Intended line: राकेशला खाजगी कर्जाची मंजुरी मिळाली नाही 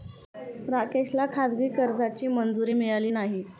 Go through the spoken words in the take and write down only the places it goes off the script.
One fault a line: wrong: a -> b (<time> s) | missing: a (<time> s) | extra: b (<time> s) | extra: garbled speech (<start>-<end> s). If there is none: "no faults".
no faults